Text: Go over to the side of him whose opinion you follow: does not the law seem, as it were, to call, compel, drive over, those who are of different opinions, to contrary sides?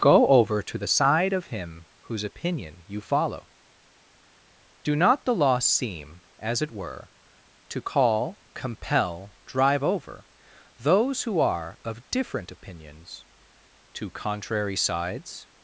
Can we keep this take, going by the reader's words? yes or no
no